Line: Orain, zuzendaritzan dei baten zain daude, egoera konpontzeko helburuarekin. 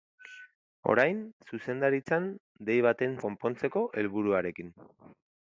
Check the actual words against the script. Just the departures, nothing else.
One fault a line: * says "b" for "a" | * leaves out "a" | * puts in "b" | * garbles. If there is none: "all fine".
* leaves out "zain daude egoera"